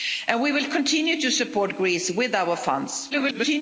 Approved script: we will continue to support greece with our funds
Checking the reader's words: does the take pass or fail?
fail